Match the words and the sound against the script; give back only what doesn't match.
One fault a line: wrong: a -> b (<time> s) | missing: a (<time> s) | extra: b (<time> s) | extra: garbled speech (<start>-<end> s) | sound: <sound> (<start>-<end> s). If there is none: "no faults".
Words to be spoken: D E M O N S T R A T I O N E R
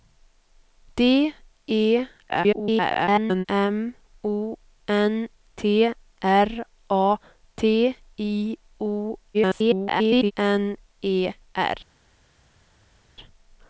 extra: garbled speech (2.3-3.5 s)
missing: S (5.3 s)
extra: garbled speech (9.3-10.3 s)